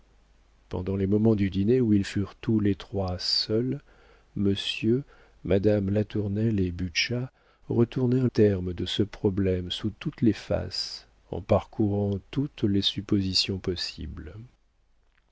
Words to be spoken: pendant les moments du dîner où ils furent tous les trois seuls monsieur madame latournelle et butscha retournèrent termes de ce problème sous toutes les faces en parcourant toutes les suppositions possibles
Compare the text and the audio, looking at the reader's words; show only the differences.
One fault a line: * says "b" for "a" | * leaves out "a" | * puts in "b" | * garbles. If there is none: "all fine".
all fine